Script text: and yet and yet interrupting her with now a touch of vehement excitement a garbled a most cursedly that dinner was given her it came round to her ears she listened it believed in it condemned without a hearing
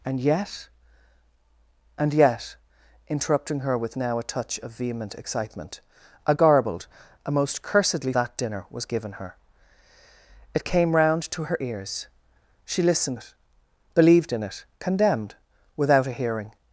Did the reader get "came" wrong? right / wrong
right